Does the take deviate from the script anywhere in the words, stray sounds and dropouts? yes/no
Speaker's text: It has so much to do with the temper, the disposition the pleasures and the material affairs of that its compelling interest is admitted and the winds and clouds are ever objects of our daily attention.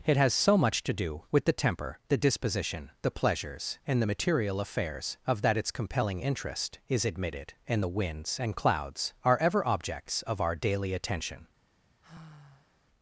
yes